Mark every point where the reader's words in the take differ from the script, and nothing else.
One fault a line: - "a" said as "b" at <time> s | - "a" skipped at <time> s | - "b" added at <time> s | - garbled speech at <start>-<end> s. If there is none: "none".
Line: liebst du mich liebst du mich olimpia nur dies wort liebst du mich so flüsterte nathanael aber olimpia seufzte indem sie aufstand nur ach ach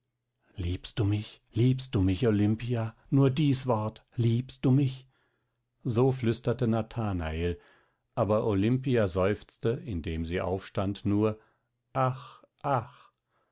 none